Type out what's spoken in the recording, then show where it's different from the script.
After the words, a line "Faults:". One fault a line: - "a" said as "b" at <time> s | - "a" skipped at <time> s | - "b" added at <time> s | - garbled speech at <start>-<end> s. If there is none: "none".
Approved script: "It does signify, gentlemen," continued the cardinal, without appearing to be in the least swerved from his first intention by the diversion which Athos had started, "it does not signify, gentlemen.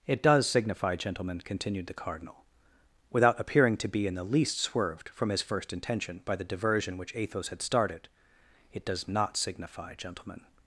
"It does signify, gentlemen," continued the cardinal, without appearing to be in the least swerved from his first intention by the diversion which Athos had started, "it does not signify, gentlemen.
Faults:
none